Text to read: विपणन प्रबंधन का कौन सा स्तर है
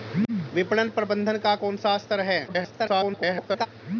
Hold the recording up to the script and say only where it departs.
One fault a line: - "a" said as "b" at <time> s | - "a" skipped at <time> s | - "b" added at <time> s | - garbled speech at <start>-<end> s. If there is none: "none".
- garbled speech at 2.5-3.7 s